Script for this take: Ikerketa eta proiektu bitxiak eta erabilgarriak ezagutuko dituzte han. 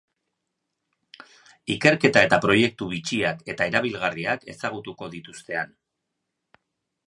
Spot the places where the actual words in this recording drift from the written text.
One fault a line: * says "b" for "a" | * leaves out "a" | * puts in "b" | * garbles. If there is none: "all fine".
all fine